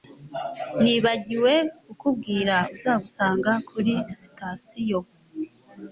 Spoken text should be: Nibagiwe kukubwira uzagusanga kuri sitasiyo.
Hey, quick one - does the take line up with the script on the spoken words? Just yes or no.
yes